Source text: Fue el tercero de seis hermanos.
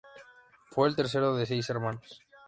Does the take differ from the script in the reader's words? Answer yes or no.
no